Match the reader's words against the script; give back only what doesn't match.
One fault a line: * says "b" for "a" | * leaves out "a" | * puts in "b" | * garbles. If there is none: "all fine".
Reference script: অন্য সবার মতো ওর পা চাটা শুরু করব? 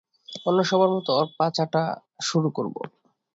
all fine